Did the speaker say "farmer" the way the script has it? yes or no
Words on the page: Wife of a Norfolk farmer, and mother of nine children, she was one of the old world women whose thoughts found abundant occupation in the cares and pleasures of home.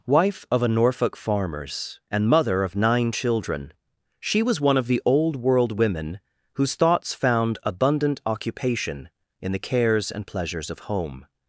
no